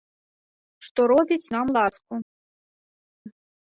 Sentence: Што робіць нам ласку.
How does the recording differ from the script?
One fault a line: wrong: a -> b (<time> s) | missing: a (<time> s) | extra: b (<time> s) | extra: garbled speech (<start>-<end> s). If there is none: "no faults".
no faults